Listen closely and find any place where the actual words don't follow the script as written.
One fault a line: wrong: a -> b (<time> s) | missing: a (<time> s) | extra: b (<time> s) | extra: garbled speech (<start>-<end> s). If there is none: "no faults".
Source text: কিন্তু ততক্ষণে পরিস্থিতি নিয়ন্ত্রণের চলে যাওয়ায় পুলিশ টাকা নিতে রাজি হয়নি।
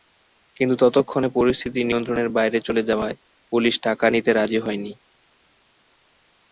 extra: বাইরে (2.4 s)